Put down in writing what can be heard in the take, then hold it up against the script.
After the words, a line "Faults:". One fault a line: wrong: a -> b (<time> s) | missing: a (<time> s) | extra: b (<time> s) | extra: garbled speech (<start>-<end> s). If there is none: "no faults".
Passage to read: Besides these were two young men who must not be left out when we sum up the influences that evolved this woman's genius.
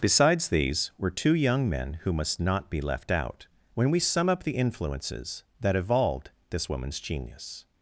Besides these were two young men who must not be left out when we sum up the influences that evolved this woman's genius.
Faults:
no faults